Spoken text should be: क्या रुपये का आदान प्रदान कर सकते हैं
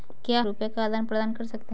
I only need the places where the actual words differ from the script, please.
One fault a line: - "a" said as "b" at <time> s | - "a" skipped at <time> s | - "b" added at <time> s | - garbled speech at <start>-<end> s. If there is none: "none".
none